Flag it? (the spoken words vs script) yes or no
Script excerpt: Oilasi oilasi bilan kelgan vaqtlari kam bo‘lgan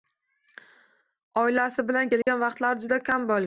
yes